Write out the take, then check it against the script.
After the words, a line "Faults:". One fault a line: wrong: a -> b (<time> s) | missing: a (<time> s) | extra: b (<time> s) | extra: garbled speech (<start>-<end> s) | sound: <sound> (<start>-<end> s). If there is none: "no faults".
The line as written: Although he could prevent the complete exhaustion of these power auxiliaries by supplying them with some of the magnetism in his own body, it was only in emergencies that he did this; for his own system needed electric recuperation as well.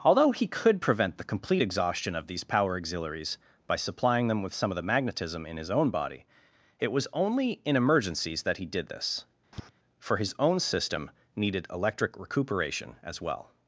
Although he could prevent the complete exhaustion of these power auxiliaries by supplying them with some of the magnetism in his own body, it was only in emergencies that he did this; for his own system needed electric recuperation as well.
Faults:
sound: tap (9.5-9.7 s)